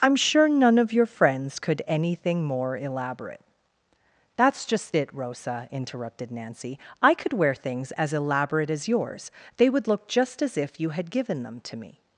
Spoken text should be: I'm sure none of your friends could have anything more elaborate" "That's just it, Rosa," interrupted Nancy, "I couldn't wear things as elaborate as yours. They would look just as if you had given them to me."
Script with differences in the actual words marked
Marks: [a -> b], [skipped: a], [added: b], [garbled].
I'm sure none of your friends could [skipped: have] anything more elaborate" "That's just it, Rosa," interrupted Nancy, "I [couldn't -> could] wear things as elaborate as yours. They would look just as if you had given them to me."